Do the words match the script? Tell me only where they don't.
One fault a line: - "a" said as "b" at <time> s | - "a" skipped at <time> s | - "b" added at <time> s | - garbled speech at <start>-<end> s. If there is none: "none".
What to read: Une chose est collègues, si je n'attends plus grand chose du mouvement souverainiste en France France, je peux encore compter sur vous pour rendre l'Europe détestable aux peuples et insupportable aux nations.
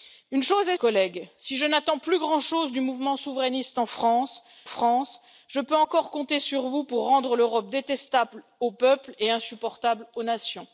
none